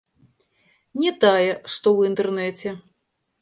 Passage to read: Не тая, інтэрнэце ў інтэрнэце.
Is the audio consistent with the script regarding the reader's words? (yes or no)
no